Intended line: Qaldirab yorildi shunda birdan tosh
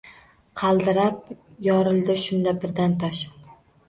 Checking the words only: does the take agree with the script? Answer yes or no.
yes